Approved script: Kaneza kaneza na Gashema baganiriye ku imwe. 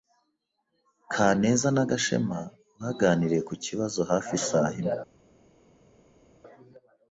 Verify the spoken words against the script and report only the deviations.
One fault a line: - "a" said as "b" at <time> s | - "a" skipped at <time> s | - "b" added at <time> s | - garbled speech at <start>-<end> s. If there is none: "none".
- "kaneza" skipped at 1.7 s
- "kibazo hafi isaha" added at 3.6 s